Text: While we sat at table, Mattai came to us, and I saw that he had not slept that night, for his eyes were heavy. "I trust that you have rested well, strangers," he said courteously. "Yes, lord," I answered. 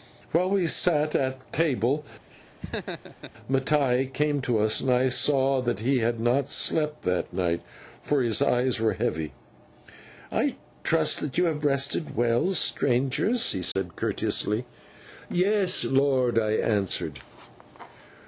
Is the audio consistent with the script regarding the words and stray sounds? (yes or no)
no